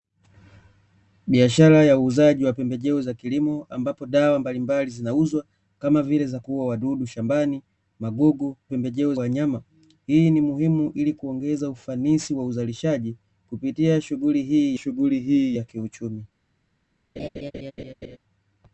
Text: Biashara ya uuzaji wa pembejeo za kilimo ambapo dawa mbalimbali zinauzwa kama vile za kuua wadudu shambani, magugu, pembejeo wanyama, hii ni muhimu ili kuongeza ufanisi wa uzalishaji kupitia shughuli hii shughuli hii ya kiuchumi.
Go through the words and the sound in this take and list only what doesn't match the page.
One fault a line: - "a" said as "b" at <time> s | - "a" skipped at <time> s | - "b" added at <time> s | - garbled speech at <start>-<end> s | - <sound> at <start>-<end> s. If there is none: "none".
- laugh at 17.2-18.2 s